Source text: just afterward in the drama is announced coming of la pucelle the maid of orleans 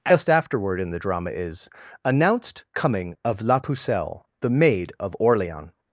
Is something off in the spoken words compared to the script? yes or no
no